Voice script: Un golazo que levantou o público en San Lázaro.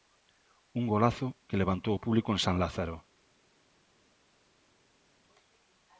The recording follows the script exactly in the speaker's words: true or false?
true